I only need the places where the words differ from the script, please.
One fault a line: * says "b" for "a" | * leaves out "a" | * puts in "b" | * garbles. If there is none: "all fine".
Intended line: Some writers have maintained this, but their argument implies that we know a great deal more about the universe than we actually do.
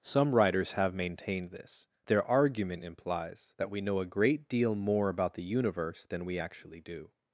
* leaves out "but"